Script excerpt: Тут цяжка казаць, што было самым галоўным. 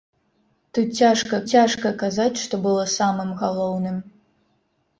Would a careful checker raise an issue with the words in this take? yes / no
yes